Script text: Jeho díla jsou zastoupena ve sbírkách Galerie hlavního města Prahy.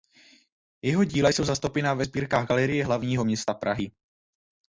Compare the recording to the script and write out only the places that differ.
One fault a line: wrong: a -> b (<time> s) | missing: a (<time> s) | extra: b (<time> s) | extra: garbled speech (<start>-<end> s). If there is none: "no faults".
no faults